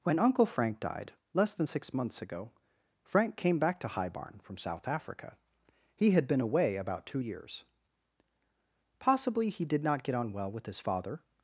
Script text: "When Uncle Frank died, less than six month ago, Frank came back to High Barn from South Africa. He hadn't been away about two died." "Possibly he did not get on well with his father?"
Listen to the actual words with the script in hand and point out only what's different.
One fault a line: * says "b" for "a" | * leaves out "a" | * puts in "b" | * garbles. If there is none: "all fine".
* says "months" for "month"
* says "had" for "hadn't"
* says "years" for "died"